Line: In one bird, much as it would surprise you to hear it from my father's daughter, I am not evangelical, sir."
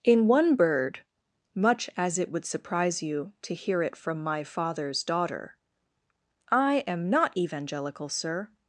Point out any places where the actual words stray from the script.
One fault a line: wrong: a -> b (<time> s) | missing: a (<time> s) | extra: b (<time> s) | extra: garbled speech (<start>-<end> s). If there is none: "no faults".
no faults